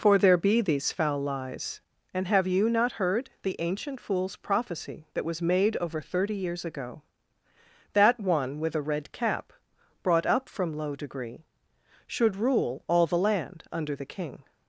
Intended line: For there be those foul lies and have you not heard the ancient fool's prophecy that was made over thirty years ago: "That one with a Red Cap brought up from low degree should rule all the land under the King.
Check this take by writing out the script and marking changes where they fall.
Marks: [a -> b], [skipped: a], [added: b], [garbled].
For there be [those -> these] foul lies and have you not heard the ancient fool's prophecy that was made over thirty years ago: "That one with a Red Cap brought up from low degree should rule all the land under the King.